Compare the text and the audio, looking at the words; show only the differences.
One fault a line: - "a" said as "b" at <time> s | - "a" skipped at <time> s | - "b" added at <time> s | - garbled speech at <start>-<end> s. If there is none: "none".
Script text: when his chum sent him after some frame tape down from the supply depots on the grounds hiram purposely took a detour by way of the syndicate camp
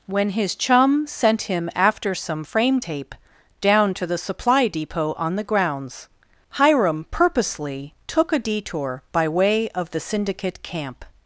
- "from" said as "to" at 3.9 s
- "depots" said as "depot" at 4.7 s